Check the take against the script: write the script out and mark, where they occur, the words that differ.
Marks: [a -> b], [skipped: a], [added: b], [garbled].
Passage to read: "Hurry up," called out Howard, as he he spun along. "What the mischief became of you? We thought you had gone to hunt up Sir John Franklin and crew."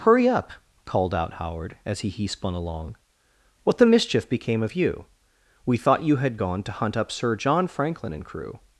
"Hurry up," called out Howard, as he he spun along. "What the mischief became of you? We thought you had gone to hunt up Sir John Franklin and crew."